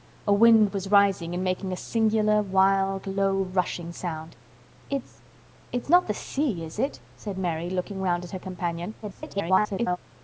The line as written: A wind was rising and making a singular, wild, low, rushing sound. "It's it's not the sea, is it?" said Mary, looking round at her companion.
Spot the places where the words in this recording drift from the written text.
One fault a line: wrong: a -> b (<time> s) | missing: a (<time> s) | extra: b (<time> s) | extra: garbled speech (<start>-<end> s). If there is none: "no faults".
extra: garbled speech (9.0-10.0 s)